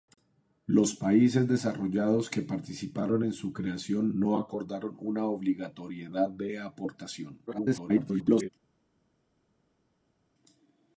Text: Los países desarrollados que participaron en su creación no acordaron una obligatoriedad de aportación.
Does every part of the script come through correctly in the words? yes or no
no